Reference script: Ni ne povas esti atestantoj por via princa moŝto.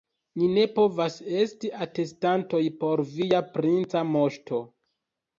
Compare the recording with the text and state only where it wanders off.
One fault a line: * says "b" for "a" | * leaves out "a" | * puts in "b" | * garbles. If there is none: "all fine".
all fine